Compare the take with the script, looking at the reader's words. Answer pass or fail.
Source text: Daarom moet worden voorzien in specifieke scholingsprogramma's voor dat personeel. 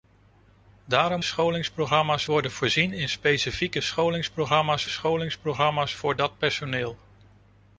fail